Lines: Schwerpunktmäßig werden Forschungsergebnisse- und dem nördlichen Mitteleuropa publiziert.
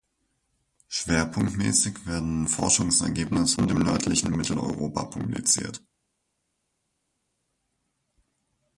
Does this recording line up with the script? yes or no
yes